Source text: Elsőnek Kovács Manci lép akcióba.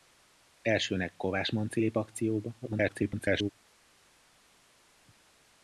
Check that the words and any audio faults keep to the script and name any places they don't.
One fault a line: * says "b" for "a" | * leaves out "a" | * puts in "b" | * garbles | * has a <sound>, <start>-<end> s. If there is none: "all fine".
* garbles